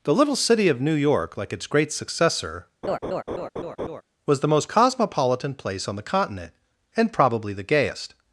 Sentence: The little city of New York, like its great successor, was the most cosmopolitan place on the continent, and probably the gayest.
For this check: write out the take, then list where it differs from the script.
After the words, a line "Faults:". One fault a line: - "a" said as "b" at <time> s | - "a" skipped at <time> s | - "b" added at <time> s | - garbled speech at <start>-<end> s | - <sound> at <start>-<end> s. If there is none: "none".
The little city of New York, like its great successor, was the most cosmopolitan place on the continent, and probably the gayest.
Faults:
- laugh at 2.8-4.0 s